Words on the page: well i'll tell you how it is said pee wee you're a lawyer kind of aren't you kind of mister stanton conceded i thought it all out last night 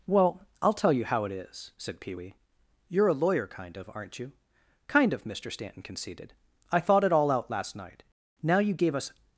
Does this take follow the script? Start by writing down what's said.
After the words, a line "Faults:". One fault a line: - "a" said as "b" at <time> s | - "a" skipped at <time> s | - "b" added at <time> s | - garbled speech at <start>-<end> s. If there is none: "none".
well i'll tell you how it is said pee wee you're a lawyer kind of aren't you kind of mister stanton conceded i thought it all out last night now you gave us
Faults:
- "now you gave us" added at 8.4 s